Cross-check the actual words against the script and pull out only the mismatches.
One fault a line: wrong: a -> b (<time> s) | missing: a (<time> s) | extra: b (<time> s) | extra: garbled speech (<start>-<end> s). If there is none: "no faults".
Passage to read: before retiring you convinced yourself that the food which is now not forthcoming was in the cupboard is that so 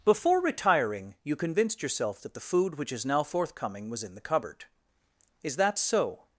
missing: not (3.2 s)